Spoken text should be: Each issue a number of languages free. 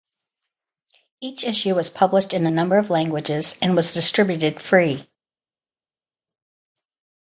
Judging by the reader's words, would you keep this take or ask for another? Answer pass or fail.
fail